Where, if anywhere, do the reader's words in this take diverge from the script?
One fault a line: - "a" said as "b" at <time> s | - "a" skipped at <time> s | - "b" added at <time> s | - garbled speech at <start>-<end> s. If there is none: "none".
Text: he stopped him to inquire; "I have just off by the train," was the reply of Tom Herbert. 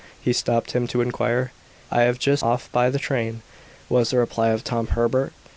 none